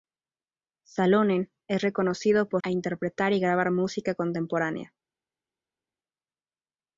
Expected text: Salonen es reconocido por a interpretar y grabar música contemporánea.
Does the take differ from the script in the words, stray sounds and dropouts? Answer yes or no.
no